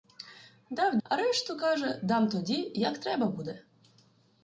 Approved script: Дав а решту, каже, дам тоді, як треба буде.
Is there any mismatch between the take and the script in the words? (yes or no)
no